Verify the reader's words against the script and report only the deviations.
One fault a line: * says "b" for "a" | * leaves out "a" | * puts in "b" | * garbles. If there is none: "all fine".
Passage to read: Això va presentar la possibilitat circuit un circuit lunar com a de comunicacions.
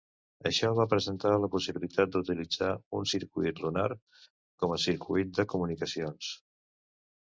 * says "d'utilitzar" for "circuit"
* puts in "circuit"